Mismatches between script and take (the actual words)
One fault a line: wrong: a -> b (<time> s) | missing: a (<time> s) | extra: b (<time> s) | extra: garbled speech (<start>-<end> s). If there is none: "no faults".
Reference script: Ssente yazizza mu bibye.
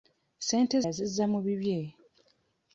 no faults